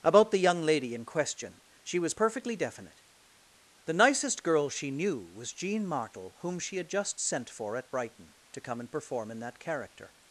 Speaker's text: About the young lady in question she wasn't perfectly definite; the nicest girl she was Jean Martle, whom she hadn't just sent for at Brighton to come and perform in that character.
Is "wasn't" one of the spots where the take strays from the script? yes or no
yes